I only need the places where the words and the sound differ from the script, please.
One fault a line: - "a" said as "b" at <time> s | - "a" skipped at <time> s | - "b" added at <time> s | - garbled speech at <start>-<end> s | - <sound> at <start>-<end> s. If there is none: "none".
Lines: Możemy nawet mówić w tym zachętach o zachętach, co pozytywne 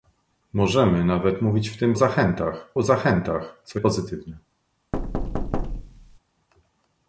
- thud at 4.9-6.2 s